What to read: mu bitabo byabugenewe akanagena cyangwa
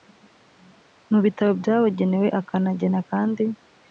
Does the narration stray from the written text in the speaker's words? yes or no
yes